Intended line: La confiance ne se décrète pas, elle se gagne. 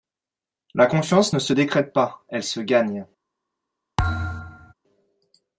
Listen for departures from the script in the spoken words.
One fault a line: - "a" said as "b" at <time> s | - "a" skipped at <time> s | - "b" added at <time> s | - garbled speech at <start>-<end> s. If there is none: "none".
none